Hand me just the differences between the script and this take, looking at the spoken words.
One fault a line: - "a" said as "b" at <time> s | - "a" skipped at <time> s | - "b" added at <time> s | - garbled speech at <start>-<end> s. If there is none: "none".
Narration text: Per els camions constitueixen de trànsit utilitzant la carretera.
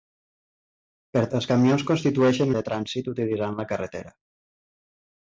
none